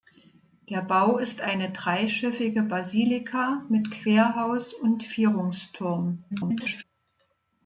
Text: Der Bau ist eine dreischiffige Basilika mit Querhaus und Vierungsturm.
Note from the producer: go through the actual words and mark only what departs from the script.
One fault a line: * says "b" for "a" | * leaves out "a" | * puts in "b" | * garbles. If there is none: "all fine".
* garbles